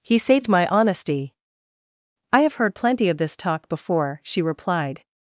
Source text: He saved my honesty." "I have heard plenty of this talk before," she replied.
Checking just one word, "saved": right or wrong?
right